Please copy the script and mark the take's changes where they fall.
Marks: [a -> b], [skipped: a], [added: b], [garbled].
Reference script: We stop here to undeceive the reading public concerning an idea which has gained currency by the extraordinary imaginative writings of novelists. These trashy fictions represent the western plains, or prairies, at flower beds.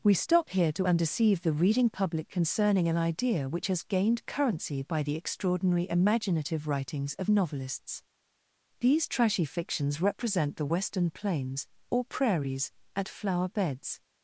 We stop here to undeceive the reading public concerning an idea which has gained currency by the extraordinary imaginative writings of novelists. These trashy fictions represent the western plains, or prairies, at flower beds.